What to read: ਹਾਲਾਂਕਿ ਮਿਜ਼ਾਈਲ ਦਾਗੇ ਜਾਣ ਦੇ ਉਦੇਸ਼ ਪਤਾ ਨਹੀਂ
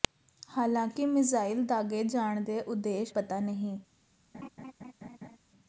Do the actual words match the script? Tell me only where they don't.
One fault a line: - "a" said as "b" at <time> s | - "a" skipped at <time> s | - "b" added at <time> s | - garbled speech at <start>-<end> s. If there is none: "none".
none